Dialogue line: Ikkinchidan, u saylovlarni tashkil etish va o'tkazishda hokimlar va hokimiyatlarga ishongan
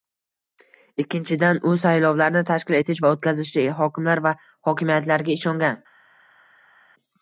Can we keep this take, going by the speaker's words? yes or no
yes